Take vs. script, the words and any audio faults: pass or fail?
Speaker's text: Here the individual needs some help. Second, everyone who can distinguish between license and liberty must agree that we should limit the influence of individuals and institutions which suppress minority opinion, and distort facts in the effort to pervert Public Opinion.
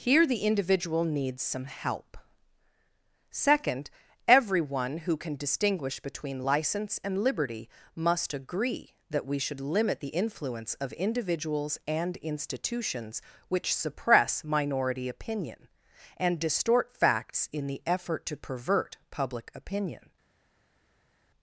pass